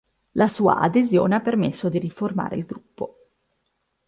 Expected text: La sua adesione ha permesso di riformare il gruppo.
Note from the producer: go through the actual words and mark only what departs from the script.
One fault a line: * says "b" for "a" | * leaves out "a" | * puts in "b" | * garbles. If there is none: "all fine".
all fine